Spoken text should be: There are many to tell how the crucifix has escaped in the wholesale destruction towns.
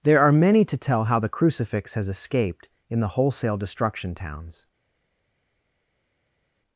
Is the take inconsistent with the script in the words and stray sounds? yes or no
no